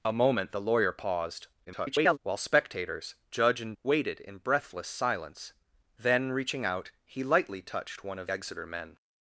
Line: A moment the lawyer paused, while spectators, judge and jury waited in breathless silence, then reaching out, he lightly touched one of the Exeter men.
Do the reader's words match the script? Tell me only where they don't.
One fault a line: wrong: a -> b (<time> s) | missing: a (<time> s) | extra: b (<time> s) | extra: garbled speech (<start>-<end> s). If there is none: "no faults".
extra: garbled speech (1.6-2.2 s)
missing: jury (3.7 s)
missing: the (8.3 s)